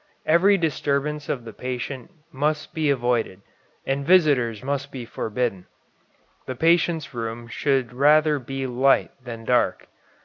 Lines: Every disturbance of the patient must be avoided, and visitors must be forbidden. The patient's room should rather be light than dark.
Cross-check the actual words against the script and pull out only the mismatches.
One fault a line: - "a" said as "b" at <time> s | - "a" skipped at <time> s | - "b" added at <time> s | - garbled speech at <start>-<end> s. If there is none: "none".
none